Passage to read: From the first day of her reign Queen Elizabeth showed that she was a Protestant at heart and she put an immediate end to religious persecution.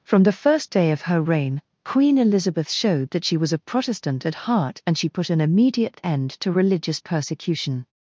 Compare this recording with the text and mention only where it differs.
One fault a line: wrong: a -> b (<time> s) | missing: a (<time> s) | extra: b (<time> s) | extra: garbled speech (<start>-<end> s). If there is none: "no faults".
no faults